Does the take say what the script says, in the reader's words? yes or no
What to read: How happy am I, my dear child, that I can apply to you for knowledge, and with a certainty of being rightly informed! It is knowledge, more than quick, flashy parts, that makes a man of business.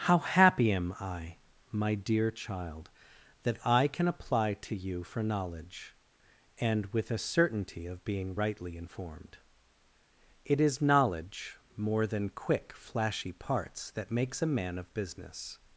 yes